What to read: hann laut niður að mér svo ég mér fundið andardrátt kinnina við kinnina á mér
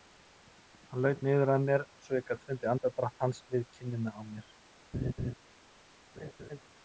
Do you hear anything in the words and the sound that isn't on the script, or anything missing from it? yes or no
yes